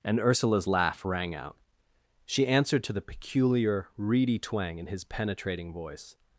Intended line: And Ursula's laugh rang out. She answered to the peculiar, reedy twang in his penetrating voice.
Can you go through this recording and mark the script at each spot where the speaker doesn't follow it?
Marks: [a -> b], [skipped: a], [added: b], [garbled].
And Ursula's laugh rang out. She answered to the peculiar, reedy twang in his penetrating voice.